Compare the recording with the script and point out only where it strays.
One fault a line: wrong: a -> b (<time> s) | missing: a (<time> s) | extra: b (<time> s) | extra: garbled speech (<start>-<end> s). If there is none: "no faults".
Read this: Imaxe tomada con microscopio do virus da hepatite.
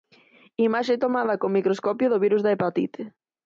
no faults